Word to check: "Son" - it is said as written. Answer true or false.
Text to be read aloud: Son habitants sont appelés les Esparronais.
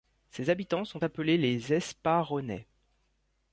false